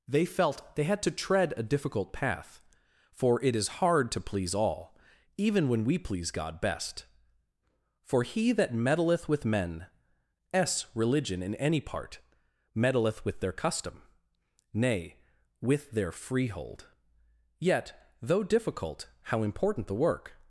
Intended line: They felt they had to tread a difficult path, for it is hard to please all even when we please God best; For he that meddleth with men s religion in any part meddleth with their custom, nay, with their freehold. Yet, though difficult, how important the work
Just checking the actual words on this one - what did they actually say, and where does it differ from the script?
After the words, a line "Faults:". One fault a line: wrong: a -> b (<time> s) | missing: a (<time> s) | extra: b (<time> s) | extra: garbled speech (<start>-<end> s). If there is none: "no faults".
They felt they had to tread a difficult path, for it is hard to please all even when we please God best; For he that meddleth with men s religion in any part meddleth with their custom, nay, with their freehold. Yet, though difficult, how important the work
Faults:
no faults